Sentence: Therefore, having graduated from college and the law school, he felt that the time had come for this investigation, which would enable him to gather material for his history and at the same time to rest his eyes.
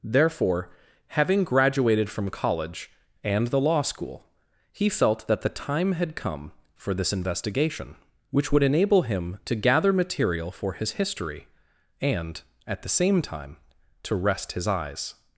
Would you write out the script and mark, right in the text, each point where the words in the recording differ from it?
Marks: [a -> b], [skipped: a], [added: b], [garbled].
Therefore, having graduated from college and the law school, he felt that the time had come for this investigation, which would enable him to gather material for his history and at the same time to rest his eyes.